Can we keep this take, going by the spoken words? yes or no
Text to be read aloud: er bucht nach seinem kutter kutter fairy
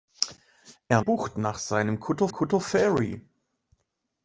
yes